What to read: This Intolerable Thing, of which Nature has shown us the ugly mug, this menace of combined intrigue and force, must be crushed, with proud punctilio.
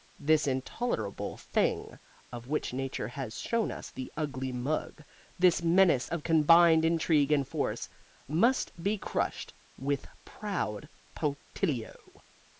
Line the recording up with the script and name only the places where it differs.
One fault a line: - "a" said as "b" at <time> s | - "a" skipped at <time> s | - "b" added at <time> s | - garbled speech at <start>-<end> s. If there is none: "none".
none